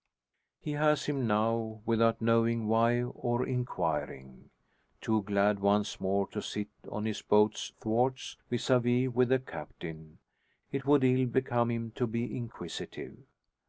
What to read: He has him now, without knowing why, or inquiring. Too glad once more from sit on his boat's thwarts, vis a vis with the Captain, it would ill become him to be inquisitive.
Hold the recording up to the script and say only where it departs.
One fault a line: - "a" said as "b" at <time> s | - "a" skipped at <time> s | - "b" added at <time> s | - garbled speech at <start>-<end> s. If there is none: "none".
- "from" said as "to" at 6.3 s